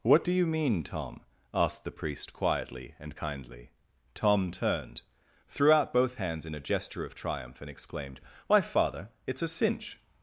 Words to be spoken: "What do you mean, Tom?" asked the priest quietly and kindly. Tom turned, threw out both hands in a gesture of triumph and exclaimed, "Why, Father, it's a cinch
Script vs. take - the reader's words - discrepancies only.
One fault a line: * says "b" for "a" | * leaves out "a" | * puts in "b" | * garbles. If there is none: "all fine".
all fine